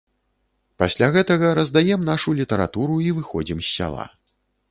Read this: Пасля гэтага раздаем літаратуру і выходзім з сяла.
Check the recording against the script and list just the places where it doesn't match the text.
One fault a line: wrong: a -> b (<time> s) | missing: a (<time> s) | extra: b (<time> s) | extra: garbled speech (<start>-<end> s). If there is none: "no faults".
extra: нашу (2.1 s)